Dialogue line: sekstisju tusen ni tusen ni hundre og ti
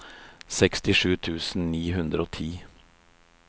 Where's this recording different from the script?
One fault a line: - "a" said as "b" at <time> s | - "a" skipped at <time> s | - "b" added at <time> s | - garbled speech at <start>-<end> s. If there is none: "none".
- "tusen ni" skipped at 1.8 s